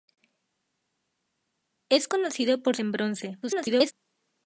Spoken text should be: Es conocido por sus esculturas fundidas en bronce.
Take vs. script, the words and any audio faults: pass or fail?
fail